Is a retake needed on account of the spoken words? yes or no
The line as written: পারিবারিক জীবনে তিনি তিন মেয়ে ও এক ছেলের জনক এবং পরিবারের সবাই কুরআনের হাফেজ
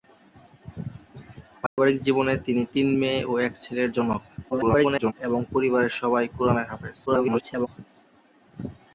yes